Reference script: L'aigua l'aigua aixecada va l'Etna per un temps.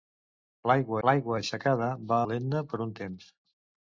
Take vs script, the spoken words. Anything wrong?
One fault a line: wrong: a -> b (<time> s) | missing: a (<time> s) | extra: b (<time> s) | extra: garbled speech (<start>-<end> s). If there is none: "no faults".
no faults